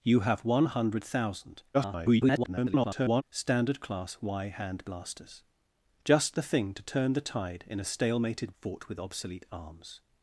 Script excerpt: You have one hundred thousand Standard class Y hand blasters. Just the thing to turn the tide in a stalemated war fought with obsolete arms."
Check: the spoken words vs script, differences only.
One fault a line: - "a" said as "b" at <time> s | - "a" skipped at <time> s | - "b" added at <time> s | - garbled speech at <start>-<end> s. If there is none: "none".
- garbled speech at 1.7-3.2 s
- "war" skipped at 8.5 s